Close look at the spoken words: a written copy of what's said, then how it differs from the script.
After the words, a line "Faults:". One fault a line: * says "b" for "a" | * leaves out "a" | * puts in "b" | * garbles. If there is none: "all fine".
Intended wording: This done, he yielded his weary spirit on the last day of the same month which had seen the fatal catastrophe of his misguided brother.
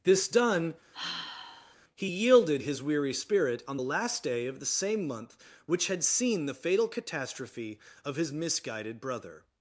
This done, he yielded his weary spirit on the last day of the same month which had seen the fatal catastrophe of his misguided brother.
Faults:
all fine